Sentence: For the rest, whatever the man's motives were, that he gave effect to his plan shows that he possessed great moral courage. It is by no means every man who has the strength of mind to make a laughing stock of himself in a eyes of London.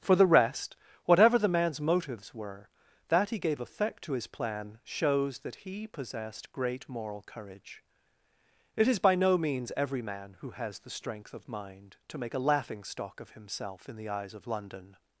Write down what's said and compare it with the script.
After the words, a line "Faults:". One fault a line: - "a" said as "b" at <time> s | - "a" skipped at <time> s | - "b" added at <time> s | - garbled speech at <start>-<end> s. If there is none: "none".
For the rest, whatever the man's motives were, that he gave effect to his plan shows that he possessed great moral courage. It is by no means every man who has the strength of mind to make a laughing stock of himself in the eyes of London.
Faults:
- "a" said as "the" at 14.0 s